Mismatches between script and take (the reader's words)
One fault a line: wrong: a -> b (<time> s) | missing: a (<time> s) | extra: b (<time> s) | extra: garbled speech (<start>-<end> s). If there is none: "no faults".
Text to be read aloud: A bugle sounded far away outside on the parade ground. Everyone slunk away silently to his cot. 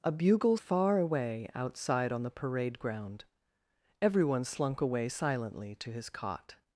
missing: sounded (0.6 s)